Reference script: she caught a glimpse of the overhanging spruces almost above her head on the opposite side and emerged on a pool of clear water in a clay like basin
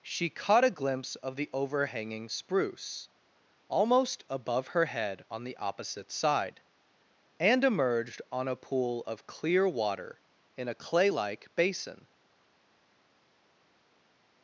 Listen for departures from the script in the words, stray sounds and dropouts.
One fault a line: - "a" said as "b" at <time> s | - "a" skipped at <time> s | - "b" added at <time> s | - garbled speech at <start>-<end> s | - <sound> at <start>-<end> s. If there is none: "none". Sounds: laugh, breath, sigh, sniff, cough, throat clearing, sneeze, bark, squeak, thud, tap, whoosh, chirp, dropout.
- "spruces" said as "spruce" at 2.3 s